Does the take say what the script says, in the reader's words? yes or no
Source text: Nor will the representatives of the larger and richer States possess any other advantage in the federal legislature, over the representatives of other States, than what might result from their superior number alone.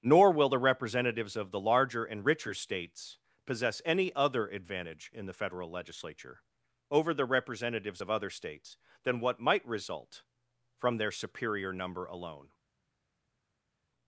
yes